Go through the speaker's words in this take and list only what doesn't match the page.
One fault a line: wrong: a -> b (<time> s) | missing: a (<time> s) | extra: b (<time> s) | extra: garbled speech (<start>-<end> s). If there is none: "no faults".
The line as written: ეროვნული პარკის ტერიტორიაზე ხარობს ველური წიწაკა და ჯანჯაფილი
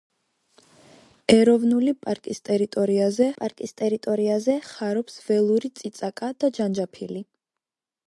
extra: პარკის ტერიტორიაზე (3.4 s)